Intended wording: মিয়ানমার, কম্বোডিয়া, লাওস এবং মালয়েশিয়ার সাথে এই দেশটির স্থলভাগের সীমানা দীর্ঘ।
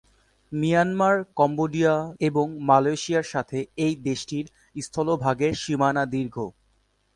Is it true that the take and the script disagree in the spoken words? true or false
true